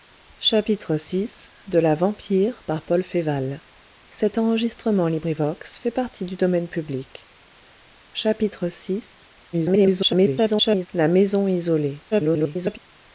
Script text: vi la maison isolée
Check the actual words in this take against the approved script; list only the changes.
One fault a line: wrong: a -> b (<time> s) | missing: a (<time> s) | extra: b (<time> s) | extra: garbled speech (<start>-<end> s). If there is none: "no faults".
extra: garbled speech (9.5-10.9 s)
extra: garbled speech (12.1-12.8 s)